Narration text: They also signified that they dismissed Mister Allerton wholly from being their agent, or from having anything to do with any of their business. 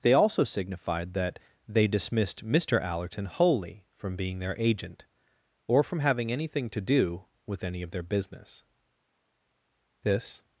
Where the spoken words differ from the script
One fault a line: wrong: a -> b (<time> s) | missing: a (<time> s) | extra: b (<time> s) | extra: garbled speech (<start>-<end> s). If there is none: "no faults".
extra: This (10.0 s)